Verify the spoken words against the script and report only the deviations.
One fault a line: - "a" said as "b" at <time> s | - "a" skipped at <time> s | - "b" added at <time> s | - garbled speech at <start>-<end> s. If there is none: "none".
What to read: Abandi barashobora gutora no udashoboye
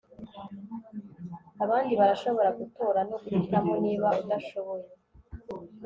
- "guhitamo niba" added at 3.2 s